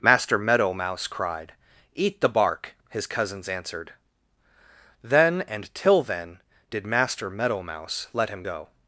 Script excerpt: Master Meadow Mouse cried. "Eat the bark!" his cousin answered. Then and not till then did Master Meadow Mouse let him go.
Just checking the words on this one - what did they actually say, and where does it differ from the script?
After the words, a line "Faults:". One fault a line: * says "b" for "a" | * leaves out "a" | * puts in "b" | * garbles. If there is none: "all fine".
Master Meadow Mouse cried. "Eat the bark!" his cousins answered. Then and till then did Master Meadow Mouse let him go.
Faults:
* says "cousins" for "cousin"
* leaves out "not"